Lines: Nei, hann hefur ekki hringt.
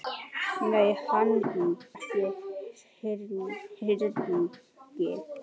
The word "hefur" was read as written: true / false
false